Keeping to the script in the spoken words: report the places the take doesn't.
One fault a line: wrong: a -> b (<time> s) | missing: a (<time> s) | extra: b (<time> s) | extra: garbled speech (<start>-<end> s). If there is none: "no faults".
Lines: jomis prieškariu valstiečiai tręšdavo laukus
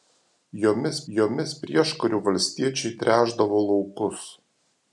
extra: jomis (1.2 s)